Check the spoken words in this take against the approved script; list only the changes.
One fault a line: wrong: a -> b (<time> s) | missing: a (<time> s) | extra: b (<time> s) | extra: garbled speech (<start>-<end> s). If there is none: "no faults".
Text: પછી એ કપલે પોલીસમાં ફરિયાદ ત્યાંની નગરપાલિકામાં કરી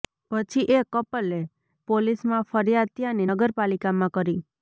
no faults